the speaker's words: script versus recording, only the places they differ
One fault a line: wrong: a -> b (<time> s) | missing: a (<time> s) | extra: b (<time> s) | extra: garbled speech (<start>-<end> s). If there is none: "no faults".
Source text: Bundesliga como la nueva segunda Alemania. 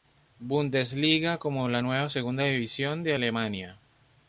extra: división de (2.4 s)